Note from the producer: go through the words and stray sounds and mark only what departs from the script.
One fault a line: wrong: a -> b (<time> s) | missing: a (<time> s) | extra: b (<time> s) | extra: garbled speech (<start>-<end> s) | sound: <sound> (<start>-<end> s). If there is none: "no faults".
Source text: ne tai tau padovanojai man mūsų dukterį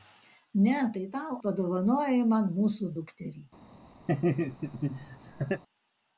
sound: laugh (4.1-5.6 s)